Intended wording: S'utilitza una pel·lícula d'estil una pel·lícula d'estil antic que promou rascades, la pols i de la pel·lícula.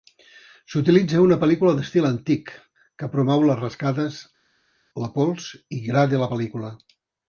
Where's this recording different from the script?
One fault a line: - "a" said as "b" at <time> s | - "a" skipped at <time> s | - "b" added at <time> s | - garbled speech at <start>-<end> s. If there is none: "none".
- "una pel·lícula d'estil" skipped at 2.1 s
- "les" added at 3.5 s
- "gra" added at 5.9 s